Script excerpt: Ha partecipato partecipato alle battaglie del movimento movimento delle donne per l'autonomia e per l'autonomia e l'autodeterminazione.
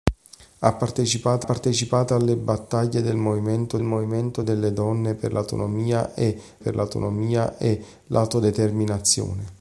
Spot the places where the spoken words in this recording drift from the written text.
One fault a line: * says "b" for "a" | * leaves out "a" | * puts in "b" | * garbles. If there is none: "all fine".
all fine